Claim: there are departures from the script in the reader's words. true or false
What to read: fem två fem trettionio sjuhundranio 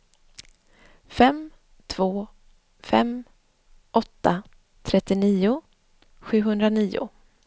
true